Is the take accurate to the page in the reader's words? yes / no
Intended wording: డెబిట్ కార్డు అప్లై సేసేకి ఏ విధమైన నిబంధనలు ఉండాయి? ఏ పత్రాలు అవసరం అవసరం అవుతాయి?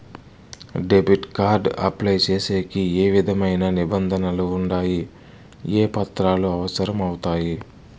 no